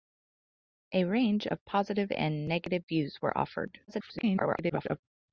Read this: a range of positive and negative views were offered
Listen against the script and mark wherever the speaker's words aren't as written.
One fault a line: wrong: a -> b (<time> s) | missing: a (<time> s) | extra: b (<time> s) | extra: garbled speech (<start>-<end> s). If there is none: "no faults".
extra: garbled speech (3.9-5.0 s)